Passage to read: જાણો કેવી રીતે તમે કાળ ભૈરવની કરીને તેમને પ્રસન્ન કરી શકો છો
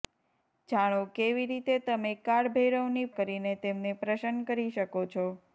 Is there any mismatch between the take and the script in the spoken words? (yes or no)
no